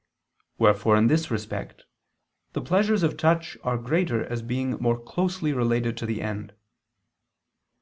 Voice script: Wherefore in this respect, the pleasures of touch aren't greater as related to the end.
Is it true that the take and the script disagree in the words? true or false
true